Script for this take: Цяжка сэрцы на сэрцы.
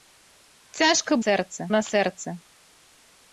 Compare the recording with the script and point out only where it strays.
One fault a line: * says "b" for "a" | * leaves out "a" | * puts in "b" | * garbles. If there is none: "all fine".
all fine